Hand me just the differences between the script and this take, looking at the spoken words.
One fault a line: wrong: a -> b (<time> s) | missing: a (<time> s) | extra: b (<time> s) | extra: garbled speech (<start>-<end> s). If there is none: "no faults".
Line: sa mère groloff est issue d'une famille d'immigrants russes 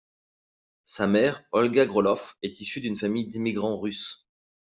extra: olga (1.5 s)